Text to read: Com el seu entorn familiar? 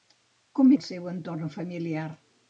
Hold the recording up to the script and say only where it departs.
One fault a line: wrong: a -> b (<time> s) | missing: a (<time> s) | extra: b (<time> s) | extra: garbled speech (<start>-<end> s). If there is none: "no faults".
no faults